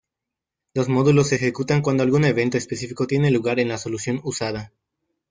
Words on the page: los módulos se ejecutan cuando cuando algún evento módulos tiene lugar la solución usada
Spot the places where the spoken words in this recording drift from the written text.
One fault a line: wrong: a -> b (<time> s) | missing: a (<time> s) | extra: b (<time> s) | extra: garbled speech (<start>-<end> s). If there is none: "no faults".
missing: cuando (2.0 s)
wrong: módulos -> específico (2.6 s)
extra: en (3.6 s)